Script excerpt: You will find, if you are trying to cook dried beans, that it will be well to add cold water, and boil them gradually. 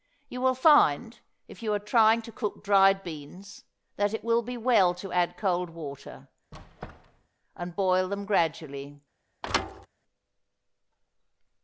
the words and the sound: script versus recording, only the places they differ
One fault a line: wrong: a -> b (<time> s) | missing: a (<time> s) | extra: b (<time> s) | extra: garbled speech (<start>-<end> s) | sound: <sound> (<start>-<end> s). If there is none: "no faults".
sound: squeak (6.5-7.3 s)
sound: thud (9.4-9.9 s)